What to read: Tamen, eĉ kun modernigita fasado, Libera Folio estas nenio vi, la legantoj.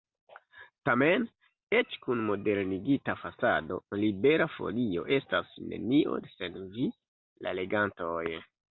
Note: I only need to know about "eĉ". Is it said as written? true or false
true